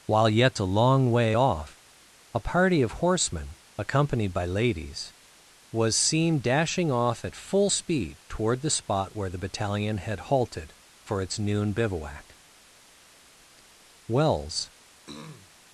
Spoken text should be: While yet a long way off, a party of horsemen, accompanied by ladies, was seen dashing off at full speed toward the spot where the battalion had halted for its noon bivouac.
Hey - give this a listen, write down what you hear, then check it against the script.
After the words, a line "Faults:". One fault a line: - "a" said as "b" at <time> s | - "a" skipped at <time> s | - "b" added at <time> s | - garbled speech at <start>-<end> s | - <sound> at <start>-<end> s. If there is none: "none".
While yet a long way off, a party of horsemen, accompanied by ladies, was seen dashing off at full speed toward the spot where the battalion had halted for its noon bivouac. Wells
Faults:
- "Wells" added at 14.1 s
- throat clearing at 15.1-15.5 s